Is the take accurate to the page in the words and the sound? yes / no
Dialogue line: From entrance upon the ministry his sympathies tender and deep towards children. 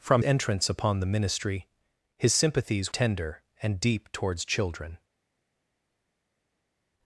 yes